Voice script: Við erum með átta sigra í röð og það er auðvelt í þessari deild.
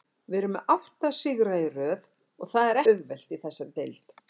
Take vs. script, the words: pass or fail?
pass